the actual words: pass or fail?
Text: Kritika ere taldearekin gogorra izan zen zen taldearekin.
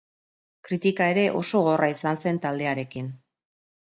fail